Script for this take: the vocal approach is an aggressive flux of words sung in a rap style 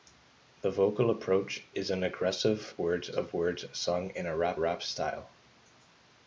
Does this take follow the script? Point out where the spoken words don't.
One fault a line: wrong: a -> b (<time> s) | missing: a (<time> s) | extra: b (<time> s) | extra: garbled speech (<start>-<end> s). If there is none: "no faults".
wrong: flux -> words (2.8 s)
extra: rap (4.6 s)